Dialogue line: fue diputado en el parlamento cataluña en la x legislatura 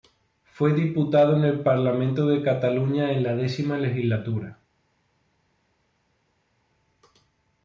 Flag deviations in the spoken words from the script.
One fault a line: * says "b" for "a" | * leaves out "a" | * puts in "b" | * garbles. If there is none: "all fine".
* puts in "de"